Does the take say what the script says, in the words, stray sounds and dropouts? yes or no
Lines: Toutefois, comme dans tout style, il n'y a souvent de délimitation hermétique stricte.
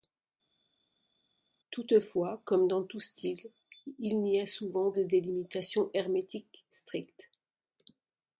yes